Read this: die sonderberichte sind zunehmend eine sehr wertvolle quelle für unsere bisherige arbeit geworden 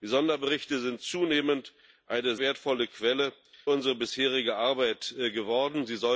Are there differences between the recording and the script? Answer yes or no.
yes